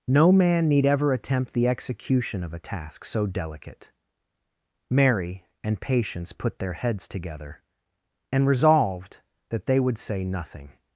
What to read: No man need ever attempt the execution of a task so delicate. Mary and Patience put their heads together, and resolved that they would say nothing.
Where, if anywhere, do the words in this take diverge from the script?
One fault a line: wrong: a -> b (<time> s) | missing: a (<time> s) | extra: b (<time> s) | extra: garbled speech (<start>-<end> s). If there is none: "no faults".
no faults